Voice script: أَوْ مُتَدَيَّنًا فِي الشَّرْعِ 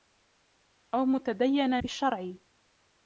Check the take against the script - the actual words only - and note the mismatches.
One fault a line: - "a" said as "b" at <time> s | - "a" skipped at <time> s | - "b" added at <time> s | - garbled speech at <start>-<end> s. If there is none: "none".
none